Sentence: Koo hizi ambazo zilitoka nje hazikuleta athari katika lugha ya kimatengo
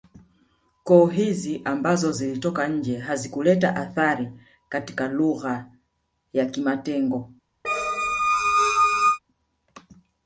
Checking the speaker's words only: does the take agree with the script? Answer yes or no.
yes